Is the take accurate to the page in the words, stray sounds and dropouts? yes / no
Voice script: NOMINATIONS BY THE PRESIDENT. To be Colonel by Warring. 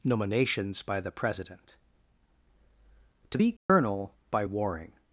no